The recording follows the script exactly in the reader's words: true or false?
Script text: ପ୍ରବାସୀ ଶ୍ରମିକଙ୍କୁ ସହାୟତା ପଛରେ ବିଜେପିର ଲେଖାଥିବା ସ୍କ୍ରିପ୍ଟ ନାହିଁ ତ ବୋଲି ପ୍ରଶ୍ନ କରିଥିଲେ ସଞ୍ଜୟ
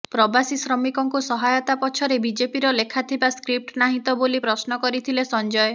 true